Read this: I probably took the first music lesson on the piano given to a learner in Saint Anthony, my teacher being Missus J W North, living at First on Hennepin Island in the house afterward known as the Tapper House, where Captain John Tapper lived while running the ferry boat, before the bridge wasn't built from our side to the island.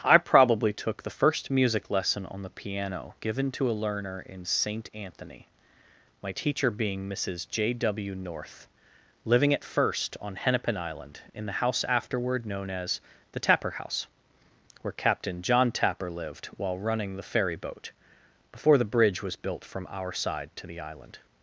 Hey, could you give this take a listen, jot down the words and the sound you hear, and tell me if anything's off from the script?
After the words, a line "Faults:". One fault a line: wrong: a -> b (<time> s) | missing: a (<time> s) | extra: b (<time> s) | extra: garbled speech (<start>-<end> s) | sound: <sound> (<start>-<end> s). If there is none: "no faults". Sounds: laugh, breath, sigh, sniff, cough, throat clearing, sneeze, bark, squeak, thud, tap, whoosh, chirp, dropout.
I probably took the first music lesson on the piano given to a learner in Saint Anthony, my teacher being Missus J W North, living at First on Hennepin Island in the house afterward known as the Tapper House, where Captain John Tapper lived while running the ferry boat, before the bridge was built from our side to the island.
Faults:
wrong: wasn't -> was (19.2 s)